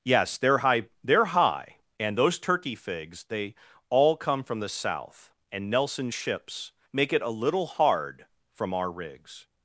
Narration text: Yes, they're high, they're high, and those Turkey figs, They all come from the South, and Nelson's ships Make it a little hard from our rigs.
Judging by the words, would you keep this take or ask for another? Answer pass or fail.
pass